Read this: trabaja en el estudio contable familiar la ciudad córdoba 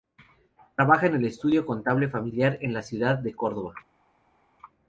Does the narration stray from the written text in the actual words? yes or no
yes